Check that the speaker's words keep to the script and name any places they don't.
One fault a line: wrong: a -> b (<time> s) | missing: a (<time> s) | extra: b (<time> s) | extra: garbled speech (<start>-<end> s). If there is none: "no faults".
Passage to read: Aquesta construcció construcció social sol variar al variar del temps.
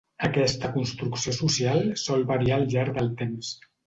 missing: construcció (1.3 s)
wrong: variar -> llarg (2.7 s)